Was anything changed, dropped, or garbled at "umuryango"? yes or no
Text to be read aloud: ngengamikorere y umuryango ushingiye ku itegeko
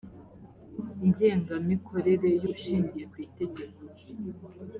yes